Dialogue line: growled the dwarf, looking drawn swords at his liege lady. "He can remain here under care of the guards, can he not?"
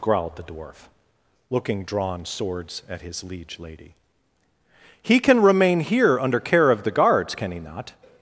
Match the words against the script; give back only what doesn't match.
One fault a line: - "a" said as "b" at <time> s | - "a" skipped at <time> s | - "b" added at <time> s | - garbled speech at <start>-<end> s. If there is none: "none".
none